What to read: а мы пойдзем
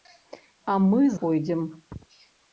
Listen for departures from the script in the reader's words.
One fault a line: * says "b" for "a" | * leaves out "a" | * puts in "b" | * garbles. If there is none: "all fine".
all fine